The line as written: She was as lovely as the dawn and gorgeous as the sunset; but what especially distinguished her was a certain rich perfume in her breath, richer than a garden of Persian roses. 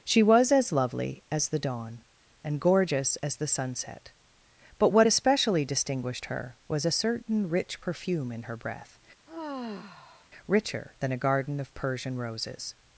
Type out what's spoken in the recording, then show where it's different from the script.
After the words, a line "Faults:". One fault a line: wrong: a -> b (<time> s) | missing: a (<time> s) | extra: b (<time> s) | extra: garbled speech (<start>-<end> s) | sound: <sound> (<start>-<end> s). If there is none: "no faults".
She was as lovely as the dawn and gorgeous as the sunset; but what especially distinguished her was a certain rich perfume in her breath, richer than a garden of Persian roses.
Faults:
sound: sigh (9.3-10.3 s)